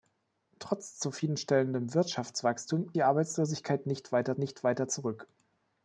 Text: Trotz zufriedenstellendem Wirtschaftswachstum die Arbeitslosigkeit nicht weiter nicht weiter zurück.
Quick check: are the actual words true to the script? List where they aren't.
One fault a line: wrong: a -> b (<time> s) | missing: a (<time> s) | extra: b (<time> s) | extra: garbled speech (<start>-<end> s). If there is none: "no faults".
no faults